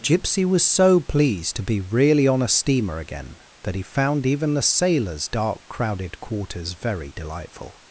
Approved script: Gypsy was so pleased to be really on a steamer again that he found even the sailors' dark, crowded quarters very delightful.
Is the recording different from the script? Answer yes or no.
no